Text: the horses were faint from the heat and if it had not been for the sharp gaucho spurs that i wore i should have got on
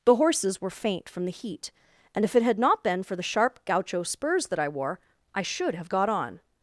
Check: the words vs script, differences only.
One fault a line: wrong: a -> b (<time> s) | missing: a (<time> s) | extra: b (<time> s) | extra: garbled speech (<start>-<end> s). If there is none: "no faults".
no faults